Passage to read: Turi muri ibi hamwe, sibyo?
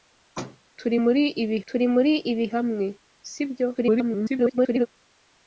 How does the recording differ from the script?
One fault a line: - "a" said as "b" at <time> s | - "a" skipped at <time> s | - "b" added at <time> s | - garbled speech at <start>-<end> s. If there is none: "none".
- "turi muri ibi" added at 1.7 s
- garbled speech at 3.7-4.9 s